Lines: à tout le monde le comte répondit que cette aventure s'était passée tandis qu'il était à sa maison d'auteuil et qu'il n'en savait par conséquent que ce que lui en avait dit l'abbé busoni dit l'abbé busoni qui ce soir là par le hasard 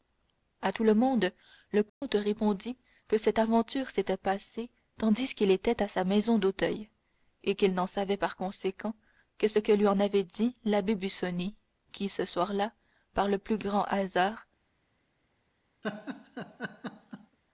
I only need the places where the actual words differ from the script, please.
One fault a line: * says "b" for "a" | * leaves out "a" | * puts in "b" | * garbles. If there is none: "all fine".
* leaves out "dit l'abbé busoni"
* puts in "plus grand"